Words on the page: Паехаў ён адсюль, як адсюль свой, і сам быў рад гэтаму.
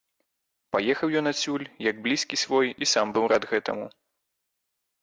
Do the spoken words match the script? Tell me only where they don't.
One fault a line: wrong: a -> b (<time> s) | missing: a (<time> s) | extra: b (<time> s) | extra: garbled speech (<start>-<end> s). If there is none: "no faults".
wrong: адсюль -> блізкі (2.1 s)